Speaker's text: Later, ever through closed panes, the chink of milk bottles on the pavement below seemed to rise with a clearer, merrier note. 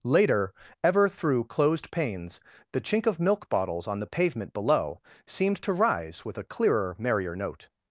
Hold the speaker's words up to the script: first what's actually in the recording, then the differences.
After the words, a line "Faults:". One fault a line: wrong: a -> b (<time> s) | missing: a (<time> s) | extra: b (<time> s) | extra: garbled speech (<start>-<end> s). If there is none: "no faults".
Later, ever through closed panes, the chink of milk bottles on the pavement below seemed to rise with a clearer, merrier note.
Faults:
no faults